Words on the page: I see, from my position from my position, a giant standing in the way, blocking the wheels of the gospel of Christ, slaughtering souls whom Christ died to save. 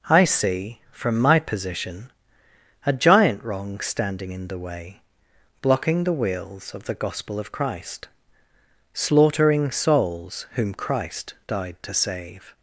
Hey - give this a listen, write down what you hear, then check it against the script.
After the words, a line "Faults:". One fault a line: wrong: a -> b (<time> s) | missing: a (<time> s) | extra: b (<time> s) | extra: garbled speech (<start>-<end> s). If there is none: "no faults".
I see, from my position, a giant wrong standing in the way, blocking the wheels of the gospel of Christ, slaughtering souls whom Christ died to save.
Faults:
missing: from my position (2.1 s)
extra: wrong (3.4 s)